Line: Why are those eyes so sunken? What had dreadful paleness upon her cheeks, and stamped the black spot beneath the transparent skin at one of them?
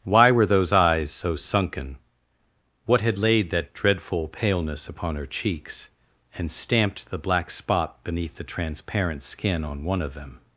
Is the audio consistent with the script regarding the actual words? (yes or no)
no